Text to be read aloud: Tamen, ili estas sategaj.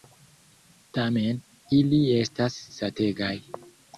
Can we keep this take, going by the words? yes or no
yes